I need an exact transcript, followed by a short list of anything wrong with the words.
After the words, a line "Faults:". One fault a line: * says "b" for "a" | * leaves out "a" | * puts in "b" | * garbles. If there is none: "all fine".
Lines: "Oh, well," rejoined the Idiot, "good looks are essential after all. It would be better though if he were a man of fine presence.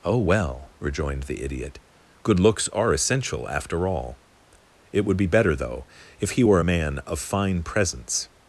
"Oh, well," rejoined the Idiot, "good looks are essential after all. It would be better though if he were a man of fine presence.
Faults:
all fine